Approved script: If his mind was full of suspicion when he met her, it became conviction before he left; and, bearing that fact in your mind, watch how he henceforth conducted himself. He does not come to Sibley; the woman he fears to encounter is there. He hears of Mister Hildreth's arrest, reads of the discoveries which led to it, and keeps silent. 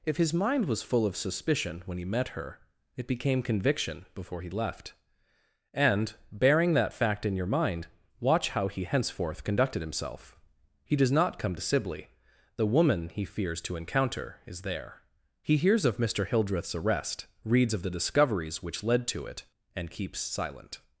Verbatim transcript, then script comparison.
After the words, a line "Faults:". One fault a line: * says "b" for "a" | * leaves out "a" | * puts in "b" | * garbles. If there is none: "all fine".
If his mind was full of suspicion when he met her, it became conviction before he left; and, bearing that fact in your mind, watch how he henceforth conducted himself. He does not come to Sibley; the woman he fears to encounter is there. He hears of Mister Hildreth's arrest, reads of the discoveries which led to it, and keeps silent.
Faults:
all fine